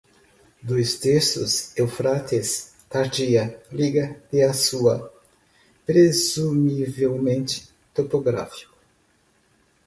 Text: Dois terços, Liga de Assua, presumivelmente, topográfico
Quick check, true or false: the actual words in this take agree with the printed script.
false